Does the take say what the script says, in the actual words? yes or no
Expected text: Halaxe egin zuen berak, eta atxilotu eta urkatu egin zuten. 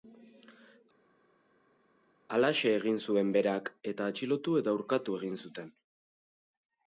yes